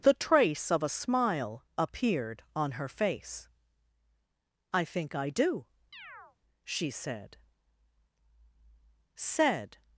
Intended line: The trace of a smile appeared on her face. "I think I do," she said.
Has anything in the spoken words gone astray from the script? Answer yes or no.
yes